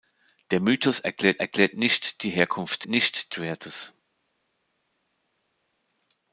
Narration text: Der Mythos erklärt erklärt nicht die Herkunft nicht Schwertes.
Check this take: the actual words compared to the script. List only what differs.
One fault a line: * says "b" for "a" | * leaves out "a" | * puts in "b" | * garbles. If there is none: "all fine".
all fine